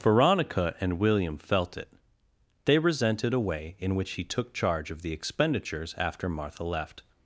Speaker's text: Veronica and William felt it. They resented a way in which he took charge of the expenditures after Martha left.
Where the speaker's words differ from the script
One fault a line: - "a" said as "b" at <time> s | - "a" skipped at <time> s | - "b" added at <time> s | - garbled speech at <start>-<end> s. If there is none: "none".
none